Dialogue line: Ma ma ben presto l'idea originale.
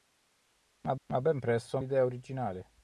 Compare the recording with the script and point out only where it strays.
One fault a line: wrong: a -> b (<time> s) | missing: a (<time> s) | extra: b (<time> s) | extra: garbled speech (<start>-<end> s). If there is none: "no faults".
no faults